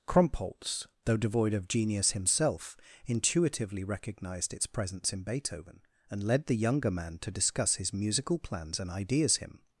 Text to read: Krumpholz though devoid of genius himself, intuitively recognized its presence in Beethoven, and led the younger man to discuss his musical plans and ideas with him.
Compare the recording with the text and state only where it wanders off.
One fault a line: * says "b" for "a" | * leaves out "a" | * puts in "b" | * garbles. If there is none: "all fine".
* leaves out "with"